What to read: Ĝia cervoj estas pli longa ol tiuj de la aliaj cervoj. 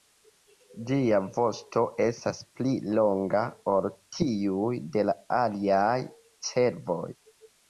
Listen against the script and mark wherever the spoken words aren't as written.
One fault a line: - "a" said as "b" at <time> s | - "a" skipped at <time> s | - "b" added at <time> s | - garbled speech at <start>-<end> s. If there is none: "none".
- "cervoj" said as "vosto" at 1.4 s